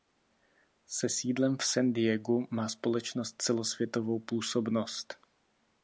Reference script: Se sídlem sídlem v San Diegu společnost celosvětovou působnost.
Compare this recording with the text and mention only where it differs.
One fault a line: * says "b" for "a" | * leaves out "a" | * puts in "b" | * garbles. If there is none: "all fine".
* leaves out "sídlem"
* puts in "má"